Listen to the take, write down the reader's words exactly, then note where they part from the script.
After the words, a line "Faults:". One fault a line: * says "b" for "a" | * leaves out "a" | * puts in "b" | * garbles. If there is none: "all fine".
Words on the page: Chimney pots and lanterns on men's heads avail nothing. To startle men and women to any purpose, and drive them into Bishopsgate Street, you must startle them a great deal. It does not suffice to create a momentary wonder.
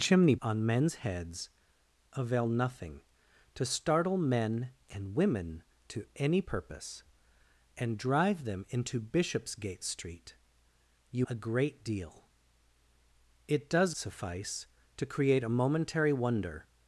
Chimney on men's heads avail nothing. To startle men and women to any purpose, and drive them into Bishopsgate Street, you a great deal. It does suffice to create a momentary wonder.
Faults:
* leaves out "pots and lanterns"
* leaves out "must startle them"
* leaves out "not"